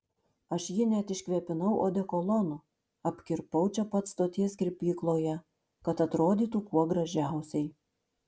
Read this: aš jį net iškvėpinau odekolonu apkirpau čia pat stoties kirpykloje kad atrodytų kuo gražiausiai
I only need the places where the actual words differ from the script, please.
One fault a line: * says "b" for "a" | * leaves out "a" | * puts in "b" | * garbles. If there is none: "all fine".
all fine